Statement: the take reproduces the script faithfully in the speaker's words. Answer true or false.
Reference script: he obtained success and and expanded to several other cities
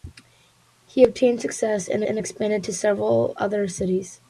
true